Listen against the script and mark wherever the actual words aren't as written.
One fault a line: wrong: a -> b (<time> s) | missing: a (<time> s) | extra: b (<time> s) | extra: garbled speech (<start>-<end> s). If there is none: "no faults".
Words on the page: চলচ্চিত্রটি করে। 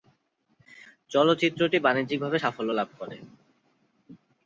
extra: বাণিজ্যিকভাবে সাফল্য লাভ (1.9 s)